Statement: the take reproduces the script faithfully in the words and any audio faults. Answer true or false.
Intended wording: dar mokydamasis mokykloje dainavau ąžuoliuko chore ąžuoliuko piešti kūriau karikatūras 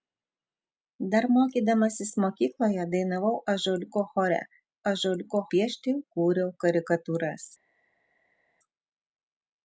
true